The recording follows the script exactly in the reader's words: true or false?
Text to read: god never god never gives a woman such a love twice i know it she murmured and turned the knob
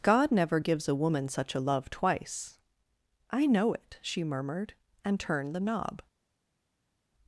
false